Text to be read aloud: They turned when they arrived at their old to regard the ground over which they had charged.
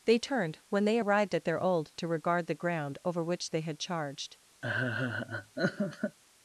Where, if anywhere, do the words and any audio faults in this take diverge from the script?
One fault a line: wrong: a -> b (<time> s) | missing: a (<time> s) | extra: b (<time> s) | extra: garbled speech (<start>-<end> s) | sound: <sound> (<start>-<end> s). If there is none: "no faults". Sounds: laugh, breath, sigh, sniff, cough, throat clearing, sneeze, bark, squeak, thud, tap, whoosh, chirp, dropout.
sound: laugh (4.6-6.2 s)